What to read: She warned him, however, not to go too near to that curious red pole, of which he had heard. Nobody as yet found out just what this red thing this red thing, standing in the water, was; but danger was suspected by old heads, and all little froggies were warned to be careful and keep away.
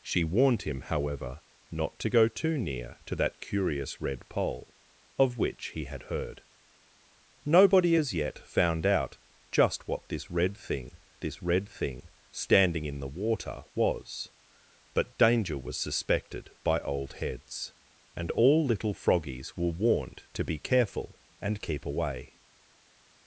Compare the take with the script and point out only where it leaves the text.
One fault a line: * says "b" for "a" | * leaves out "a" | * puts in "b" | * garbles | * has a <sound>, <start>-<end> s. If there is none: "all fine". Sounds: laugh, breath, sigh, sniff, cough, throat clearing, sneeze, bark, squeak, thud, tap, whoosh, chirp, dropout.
all fine